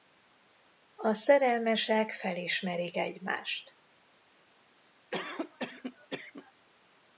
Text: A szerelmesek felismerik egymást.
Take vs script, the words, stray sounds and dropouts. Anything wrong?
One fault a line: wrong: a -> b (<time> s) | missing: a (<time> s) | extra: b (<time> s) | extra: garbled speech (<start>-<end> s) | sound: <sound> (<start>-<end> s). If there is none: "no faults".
sound: cough (5.1-6.5 s)